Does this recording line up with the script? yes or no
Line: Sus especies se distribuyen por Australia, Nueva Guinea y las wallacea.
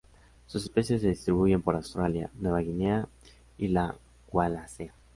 no